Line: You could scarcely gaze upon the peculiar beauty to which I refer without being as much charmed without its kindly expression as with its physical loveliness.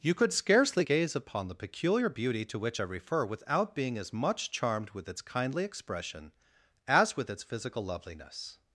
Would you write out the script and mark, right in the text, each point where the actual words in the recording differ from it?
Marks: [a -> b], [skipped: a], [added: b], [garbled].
You could scarcely gaze upon the peculiar beauty to which I refer without being as much charmed [without -> with] its kindly expression as with its physical loveliness.